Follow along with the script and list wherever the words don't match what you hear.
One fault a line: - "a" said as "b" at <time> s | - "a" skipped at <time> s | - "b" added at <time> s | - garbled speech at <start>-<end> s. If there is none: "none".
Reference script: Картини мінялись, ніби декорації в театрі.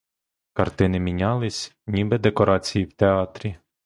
none